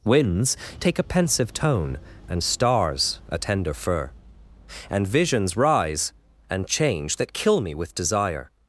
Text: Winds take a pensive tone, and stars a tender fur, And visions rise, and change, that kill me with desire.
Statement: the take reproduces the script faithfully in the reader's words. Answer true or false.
true